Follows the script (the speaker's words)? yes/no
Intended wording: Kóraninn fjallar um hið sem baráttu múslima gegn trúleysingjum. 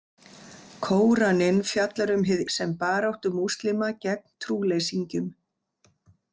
yes